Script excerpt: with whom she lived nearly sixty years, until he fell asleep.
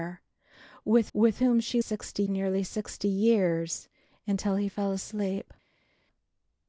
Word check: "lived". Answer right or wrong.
wrong